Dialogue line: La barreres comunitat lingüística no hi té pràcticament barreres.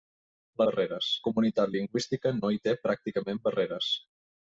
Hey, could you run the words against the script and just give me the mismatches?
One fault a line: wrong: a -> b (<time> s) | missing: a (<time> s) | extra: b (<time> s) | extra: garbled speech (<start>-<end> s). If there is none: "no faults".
no faults